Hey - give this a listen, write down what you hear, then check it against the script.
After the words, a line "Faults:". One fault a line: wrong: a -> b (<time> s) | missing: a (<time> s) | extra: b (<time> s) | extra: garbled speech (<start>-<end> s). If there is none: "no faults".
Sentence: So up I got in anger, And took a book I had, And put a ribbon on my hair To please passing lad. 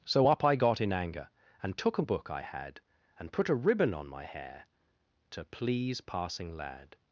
So up I got in anger, And took a book I had, And put a ribbon on my hair To please passing lad.
Faults:
no faults